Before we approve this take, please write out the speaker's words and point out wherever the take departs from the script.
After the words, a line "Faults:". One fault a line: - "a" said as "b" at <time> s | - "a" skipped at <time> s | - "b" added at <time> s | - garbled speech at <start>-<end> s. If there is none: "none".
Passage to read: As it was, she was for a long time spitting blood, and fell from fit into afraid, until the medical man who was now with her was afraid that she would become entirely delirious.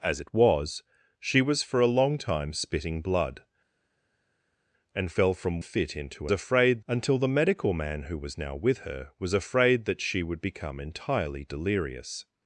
As it was, she was for a long time spitting blood, and fell from fit into afraid, until the medical man who was now with her was afraid that she would become entirely delirious.
Faults:
none